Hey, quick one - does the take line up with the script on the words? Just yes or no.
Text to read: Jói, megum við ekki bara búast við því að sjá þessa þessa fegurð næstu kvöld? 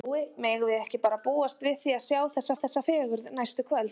yes